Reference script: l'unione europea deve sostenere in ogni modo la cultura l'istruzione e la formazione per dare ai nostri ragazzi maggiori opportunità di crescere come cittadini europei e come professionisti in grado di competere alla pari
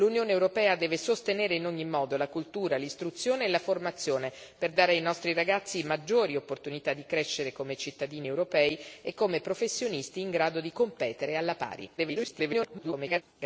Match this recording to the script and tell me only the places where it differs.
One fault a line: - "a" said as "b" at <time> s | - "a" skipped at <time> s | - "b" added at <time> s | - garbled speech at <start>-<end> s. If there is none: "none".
- garbled speech at 12.0-13.2 s